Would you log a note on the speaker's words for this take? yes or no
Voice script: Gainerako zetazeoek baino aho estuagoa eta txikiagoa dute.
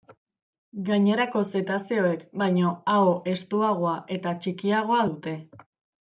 no